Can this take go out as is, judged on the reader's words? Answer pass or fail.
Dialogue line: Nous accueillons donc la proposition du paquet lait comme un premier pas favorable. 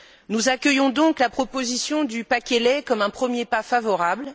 pass